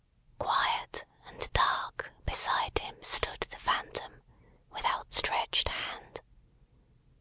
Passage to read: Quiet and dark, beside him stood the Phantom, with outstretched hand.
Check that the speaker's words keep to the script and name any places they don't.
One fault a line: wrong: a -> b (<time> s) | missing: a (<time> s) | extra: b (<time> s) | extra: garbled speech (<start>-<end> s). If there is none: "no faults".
no faults